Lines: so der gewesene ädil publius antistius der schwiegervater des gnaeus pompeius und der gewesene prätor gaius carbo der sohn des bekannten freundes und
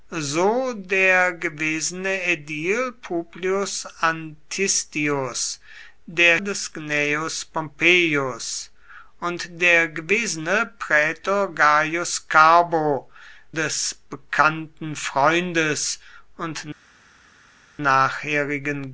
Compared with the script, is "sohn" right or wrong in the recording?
wrong